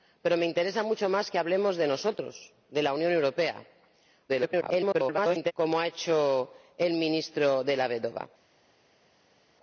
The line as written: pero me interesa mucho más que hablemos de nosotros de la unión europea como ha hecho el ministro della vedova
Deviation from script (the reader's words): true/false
true